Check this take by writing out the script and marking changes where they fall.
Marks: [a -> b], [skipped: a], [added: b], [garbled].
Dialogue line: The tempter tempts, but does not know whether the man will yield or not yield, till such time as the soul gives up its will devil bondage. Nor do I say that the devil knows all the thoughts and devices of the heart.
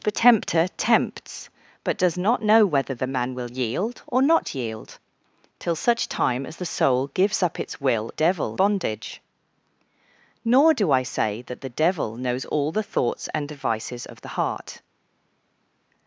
The tempter tempts, but does not know whether the man will yield or not yield, till such time as the soul gives up its will devil bondage. Nor do I say that the devil knows all the thoughts and devices of the heart.